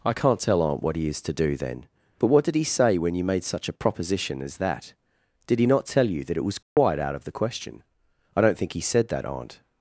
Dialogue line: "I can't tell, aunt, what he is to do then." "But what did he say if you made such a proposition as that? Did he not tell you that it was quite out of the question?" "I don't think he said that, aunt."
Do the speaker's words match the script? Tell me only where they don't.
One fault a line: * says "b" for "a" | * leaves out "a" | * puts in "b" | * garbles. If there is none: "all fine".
* says "when" for "if"